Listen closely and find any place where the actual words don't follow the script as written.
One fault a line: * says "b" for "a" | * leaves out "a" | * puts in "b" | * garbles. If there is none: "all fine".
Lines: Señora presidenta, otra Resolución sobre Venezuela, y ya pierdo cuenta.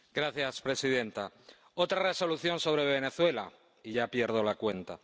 * puts in "la"